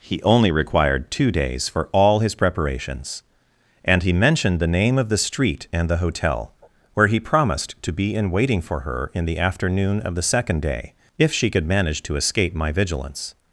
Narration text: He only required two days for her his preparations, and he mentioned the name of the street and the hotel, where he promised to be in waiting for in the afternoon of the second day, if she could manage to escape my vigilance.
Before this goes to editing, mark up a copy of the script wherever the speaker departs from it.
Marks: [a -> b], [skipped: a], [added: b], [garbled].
He only required two days for [her -> all] his preparations, and he mentioned the name of the street and the hotel, where he promised to be in waiting for [added: her] in the afternoon of the second day, if she could manage to escape my vigilance.